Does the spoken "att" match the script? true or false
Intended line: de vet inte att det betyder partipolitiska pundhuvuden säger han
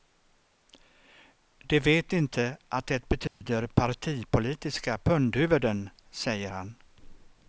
true